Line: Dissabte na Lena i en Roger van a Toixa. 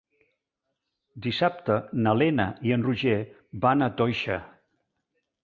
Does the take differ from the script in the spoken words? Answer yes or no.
no